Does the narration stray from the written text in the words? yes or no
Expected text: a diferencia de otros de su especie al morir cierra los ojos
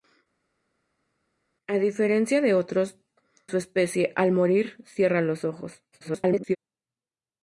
yes